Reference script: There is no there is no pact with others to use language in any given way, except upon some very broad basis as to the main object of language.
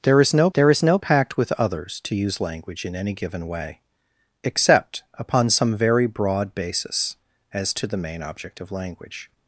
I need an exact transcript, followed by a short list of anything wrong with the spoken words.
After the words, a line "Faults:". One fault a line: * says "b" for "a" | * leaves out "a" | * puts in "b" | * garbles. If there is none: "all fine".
There is no there is no pact with others to use language in any given way, except upon some very broad basis as to the main object of language.
Faults:
all fine